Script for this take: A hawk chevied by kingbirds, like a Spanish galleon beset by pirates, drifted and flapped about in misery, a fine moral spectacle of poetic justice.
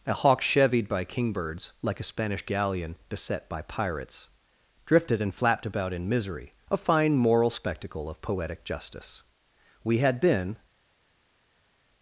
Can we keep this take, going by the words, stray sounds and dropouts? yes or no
no